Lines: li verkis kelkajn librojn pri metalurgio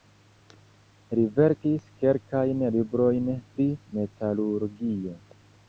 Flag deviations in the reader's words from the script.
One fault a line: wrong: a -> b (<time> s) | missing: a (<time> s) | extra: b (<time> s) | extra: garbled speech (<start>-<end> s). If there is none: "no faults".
no faults